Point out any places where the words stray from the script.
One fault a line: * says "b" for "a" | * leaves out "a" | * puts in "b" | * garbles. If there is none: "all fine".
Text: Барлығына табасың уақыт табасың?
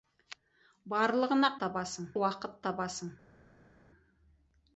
all fine